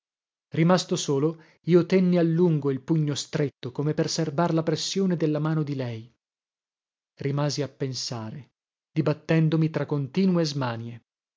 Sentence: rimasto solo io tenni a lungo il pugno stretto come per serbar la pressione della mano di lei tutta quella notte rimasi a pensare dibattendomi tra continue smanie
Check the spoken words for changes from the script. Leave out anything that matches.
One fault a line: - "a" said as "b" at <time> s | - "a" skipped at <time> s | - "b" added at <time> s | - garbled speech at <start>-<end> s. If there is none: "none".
- "tutta quella notte" skipped at 6.1 s